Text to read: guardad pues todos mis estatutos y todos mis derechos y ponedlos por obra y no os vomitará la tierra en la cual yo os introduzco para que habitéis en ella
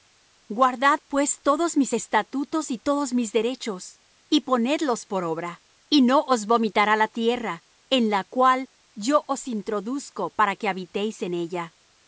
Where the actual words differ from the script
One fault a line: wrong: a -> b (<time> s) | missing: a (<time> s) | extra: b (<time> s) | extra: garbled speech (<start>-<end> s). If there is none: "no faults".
no faults